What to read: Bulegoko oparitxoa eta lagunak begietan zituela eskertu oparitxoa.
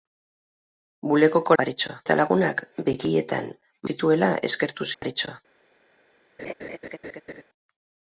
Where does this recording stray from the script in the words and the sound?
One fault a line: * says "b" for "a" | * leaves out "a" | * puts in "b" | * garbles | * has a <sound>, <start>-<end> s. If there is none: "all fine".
* has a dropout, 5.0-5.0 s
* has a laugh, 6.4-7.4 s